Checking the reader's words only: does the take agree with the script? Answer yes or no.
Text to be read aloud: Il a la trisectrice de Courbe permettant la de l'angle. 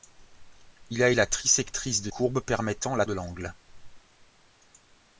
yes